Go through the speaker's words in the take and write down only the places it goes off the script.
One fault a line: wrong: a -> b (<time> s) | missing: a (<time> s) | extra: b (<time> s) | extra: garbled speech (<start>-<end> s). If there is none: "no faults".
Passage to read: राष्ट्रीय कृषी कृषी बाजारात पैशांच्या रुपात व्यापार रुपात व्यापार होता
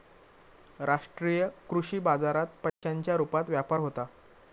missing: कृषी (2.0 s)
missing: रुपात व्यापार (3.8 s)